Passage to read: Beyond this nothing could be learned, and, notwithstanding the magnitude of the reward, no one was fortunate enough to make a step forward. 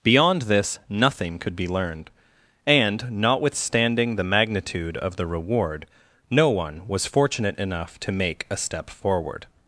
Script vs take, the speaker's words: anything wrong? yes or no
no